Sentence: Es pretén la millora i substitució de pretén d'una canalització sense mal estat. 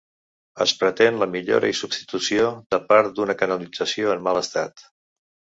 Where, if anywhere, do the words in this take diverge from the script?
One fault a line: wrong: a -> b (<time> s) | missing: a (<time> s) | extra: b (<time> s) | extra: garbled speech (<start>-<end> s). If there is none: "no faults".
wrong: pretén -> part (2.9 s)
wrong: sense -> en (4.2 s)